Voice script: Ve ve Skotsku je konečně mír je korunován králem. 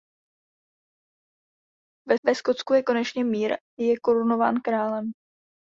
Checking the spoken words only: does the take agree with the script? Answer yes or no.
yes